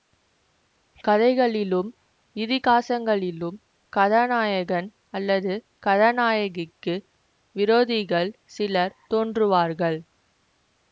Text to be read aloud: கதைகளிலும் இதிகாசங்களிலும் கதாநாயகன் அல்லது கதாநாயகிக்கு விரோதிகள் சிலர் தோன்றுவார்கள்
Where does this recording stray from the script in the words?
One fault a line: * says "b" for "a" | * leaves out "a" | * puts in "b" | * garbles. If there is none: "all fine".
all fine